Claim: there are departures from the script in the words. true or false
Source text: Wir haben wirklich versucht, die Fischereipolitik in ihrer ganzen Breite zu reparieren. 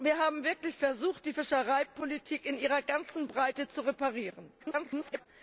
true